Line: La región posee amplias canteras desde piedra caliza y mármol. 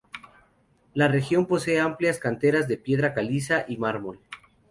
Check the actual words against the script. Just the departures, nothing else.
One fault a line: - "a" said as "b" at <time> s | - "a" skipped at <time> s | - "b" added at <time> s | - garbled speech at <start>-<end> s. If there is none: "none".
- "desde" said as "de" at 2.7 s